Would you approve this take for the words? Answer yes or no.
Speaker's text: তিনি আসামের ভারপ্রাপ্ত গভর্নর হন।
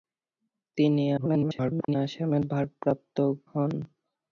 no